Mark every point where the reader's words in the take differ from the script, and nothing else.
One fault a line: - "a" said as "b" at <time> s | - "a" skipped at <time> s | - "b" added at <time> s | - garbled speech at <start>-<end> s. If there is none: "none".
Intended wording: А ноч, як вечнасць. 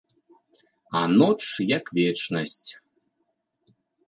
none